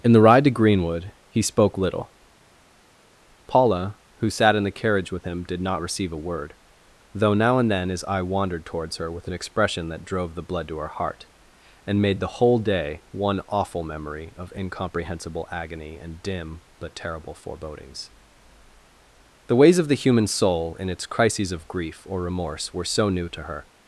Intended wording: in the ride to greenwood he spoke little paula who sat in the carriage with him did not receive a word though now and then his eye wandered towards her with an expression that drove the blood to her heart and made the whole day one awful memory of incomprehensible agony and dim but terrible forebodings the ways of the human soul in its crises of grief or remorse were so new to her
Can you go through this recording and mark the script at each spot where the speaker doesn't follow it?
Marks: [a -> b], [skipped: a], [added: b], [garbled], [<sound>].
in the ride to greenwood he spoke little paula who sat in the carriage with him did not receive a word though now and then his eye wandered towards her with an expression that drove the blood to her heart and made the whole day one awful memory of incomprehensible agony and dim but terrible forebodings the ways of the human soul in its crises of grief or remorse were so new to her